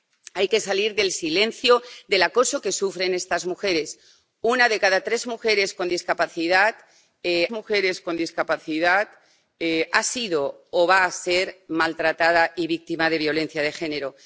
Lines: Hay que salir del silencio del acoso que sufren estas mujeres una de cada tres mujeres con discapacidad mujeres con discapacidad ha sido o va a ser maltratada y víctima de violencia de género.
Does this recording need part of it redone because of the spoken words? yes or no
no